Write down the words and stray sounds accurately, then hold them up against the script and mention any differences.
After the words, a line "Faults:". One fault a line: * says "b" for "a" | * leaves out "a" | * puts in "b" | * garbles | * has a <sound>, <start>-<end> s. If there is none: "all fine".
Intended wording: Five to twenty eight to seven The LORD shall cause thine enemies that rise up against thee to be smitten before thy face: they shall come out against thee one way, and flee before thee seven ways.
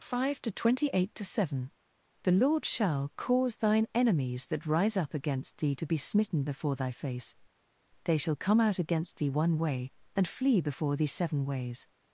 Five to twenty eight to seven The LORD shall cause thine enemies that rise up against thee to be smitten before thy face: they shall come out against thee one way, and flee before thee seven ways.
Faults:
all fine